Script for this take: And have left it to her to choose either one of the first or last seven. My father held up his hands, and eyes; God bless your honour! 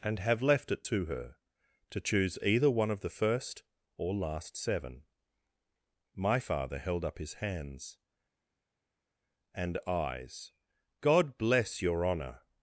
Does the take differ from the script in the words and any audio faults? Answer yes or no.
no